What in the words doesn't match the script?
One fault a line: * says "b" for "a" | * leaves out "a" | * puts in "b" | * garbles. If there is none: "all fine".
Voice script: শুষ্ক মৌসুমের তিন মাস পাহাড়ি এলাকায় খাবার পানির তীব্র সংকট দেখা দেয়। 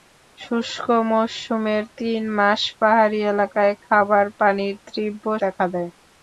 * leaves out "সংকট"